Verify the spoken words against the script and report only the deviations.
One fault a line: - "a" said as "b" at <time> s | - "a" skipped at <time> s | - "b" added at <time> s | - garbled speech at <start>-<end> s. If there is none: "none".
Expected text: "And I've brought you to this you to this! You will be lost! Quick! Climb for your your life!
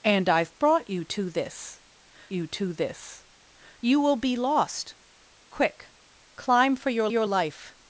none